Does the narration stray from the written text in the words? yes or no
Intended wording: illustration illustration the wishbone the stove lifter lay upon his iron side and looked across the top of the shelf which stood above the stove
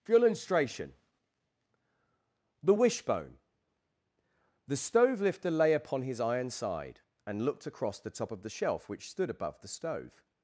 yes